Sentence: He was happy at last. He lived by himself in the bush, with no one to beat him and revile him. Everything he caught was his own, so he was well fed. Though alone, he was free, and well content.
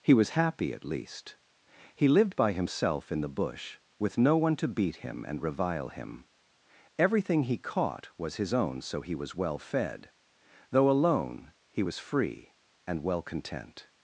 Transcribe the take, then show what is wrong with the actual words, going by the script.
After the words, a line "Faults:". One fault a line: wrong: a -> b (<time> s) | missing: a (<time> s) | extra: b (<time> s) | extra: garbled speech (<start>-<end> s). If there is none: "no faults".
He was happy at least. He lived by himself in the bush, with no one to beat him and revile him. Everything he caught was his own, so he was well fed. Though alone, he was free, and well content.
Faults:
wrong: last -> least (0.8 s)